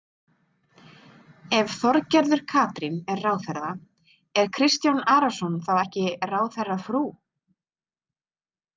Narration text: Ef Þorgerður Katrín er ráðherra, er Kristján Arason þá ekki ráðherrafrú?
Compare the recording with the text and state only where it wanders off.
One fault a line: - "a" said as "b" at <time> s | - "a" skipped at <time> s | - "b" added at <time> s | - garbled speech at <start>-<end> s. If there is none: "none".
none